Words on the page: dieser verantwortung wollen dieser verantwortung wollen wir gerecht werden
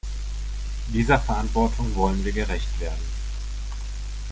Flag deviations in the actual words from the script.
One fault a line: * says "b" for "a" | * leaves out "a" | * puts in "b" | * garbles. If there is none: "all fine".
* leaves out "dieser verantwortung wollen"